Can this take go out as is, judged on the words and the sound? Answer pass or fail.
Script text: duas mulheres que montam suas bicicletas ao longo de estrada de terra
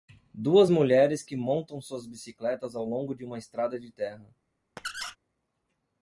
fail